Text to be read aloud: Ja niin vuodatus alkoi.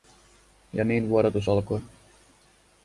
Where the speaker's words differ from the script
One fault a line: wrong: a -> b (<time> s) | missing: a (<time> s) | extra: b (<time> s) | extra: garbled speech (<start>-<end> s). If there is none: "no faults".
no faults